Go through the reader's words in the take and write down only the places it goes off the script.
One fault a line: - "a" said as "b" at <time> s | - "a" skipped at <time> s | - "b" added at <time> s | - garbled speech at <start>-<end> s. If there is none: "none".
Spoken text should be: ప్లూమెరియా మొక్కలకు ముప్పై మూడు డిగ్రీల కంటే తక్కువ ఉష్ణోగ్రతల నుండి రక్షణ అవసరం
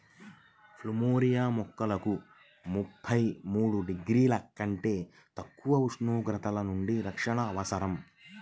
none